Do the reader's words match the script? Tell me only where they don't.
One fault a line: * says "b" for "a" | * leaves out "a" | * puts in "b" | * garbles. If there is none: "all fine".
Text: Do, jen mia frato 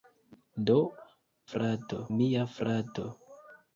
* says "frato" for "jen"